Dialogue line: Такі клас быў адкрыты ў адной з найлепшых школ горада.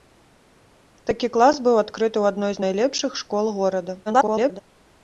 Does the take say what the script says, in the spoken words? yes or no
no